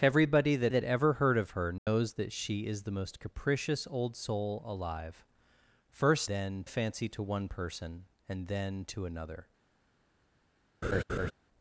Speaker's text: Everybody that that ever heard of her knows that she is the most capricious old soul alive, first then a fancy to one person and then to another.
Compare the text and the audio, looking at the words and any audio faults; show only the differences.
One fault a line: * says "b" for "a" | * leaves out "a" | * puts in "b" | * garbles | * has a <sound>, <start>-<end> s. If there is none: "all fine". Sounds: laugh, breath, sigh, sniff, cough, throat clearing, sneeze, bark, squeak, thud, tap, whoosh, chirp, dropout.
* has a dropout, 1.8-1.9 s
* has a laugh, 10.8-11.3 s